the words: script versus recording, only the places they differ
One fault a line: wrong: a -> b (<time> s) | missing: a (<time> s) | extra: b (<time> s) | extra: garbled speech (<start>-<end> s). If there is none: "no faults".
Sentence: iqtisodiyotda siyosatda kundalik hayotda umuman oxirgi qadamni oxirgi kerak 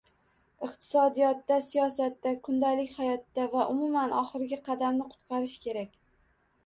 extra: va (3.5 s)
wrong: oxirgi -> qutqarish (5.1 s)